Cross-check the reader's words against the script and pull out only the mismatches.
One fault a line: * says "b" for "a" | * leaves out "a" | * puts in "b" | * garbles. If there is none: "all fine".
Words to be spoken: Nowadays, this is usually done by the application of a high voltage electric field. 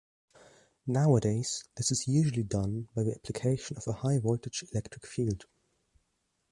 all fine